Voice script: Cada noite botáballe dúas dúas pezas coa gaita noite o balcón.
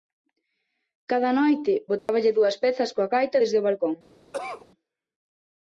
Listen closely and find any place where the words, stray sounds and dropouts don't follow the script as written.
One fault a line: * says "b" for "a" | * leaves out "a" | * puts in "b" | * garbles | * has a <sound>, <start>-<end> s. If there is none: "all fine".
* has a dropout, 2.0-2.1 s
* leaves out "dúas"
* says "desde" for "noite"
* has a cough, 4.3-4.7 s